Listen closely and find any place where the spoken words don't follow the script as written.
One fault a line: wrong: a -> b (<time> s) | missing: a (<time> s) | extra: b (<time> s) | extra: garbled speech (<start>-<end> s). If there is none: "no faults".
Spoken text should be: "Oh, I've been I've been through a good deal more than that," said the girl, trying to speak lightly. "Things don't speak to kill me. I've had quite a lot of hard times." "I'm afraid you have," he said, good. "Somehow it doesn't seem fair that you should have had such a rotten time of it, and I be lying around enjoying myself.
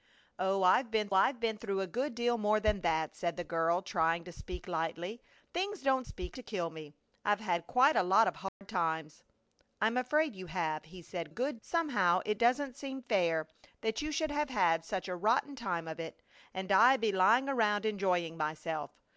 no faults